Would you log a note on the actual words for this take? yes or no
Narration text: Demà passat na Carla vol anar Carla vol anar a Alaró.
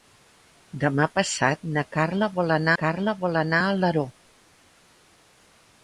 no